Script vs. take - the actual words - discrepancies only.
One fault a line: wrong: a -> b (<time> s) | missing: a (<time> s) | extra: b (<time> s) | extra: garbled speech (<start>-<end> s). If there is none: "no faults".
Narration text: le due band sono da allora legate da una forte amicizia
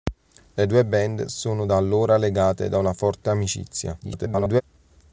extra: garbled speech (4.0-4.6 s)